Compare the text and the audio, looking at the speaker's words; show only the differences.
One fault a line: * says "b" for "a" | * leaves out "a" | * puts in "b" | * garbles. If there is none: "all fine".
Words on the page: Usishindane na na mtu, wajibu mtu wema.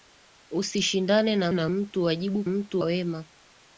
all fine